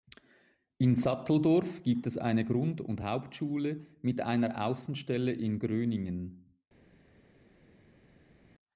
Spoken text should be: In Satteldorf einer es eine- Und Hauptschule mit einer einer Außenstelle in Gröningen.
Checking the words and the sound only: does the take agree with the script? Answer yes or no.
no